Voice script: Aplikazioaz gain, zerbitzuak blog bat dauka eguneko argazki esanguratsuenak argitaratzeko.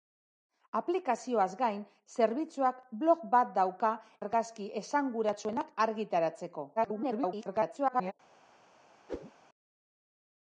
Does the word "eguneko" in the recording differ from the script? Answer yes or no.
yes